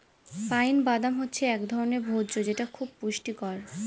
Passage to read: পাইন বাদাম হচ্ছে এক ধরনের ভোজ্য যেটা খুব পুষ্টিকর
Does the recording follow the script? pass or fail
pass